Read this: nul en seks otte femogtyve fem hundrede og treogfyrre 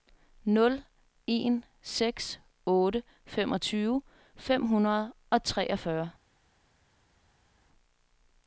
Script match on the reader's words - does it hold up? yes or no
yes